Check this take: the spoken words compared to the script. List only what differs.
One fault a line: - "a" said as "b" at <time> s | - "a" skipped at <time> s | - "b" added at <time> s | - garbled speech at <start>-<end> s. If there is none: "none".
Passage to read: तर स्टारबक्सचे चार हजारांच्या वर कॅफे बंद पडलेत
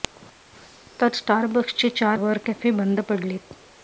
- "हजारांच्या" skipped at 2.2 s